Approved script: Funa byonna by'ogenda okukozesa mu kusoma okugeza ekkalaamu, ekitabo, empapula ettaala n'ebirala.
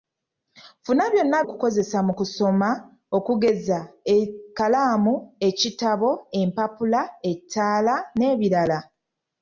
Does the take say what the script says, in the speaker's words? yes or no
no